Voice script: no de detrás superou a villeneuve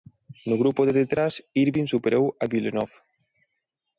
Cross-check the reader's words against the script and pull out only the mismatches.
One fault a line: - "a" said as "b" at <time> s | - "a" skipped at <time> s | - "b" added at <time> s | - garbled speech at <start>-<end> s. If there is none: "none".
- "grupo" added at 0.6 s
- "irvine" added at 1.6 s